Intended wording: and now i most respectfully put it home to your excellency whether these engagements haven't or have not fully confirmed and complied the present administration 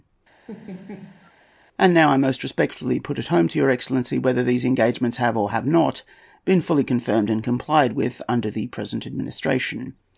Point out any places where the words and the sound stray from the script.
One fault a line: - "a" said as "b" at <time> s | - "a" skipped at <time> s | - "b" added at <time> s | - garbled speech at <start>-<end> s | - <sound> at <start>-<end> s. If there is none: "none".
- laugh at 0.5-1.3 s
- "haven't" said as "have" at 5.2 s
- "been" added at 6.5 s
- "with under" added at 7.9 s